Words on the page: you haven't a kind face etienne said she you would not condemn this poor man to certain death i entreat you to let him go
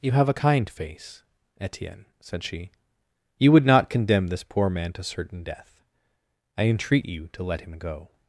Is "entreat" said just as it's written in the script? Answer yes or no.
yes